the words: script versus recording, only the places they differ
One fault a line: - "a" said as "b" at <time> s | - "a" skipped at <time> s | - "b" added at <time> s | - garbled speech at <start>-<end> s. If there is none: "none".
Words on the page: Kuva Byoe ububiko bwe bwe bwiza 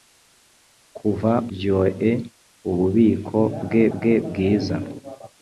none